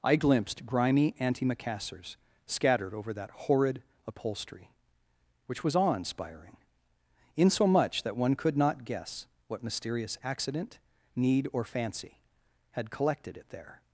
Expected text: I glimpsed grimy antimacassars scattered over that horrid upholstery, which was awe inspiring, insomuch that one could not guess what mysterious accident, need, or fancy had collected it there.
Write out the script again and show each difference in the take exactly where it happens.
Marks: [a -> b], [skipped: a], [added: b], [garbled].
I glimpsed grimy antimacassars scattered over that horrid upholstery, which was awe inspiring, insomuch that one could not guess what mysterious accident, need, or fancy had collected it there.